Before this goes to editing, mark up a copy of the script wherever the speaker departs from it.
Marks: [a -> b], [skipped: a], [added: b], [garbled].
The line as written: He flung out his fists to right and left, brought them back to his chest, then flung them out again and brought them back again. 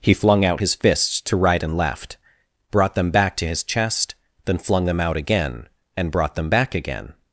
He flung out his fists to right and left, brought them back to his chest, then flung them out again and brought them back again.